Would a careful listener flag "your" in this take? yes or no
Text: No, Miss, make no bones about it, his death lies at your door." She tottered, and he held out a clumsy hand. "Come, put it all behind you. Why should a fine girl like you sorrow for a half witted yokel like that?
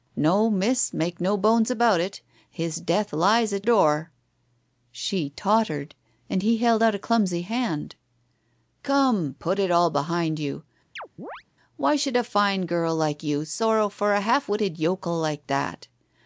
yes